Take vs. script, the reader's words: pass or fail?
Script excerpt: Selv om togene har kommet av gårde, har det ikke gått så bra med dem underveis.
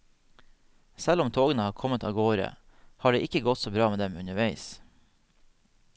pass